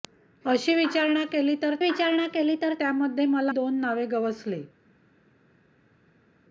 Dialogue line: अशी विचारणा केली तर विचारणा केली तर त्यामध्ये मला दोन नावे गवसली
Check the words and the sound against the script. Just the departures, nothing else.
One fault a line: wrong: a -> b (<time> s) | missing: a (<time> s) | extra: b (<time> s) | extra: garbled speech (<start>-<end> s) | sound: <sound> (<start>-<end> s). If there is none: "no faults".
no faults